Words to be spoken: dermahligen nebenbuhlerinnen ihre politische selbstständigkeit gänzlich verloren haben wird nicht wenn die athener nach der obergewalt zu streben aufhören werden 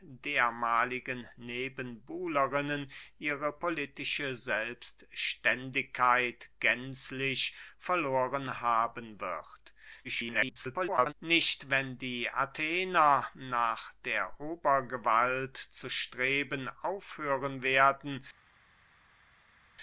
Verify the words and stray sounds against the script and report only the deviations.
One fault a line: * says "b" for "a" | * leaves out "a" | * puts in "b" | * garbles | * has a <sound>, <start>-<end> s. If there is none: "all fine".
* garbles